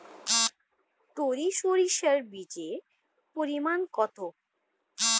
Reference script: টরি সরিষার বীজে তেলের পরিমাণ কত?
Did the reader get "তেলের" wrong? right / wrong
wrong